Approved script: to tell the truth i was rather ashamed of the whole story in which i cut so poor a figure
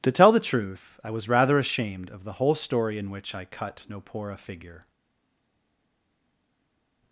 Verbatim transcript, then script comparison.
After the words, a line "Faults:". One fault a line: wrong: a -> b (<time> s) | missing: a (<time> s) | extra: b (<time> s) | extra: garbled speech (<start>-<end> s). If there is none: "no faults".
to tell the truth i was rather ashamed of the whole story in which i cut no poor a figure
Faults:
wrong: so -> no (3.9 s)